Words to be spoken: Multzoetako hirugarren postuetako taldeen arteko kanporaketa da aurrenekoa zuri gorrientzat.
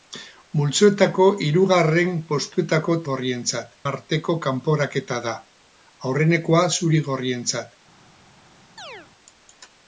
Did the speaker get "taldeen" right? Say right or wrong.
wrong